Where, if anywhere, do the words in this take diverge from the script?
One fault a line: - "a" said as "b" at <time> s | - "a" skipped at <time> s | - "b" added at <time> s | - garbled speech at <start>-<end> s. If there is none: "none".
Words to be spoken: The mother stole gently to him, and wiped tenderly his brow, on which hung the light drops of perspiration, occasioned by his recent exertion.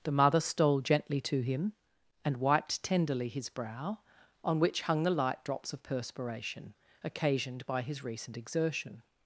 none